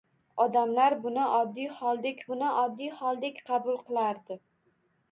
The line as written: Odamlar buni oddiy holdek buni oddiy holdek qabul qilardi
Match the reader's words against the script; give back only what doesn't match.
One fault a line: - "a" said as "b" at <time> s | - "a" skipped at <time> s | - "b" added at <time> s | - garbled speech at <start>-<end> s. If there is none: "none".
none